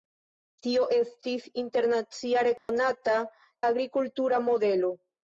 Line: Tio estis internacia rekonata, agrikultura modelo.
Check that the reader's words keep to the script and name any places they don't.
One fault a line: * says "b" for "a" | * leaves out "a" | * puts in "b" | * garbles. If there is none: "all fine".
all fine